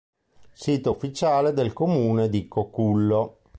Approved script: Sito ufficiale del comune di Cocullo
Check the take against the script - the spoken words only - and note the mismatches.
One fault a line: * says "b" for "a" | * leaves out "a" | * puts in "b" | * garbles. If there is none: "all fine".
all fine